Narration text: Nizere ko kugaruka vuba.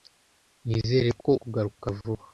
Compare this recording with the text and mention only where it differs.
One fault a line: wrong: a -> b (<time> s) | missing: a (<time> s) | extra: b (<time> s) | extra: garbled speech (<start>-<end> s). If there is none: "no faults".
no faults